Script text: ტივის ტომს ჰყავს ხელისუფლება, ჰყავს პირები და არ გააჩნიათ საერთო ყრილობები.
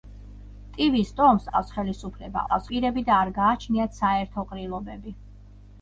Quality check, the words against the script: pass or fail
pass